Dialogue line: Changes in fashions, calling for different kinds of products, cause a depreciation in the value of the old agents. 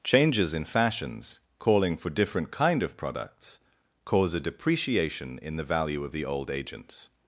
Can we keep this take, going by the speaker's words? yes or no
no